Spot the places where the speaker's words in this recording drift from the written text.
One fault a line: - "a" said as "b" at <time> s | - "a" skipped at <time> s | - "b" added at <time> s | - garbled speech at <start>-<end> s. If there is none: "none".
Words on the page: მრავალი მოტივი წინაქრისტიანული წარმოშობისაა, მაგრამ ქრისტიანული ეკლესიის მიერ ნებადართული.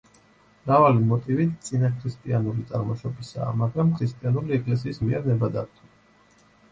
none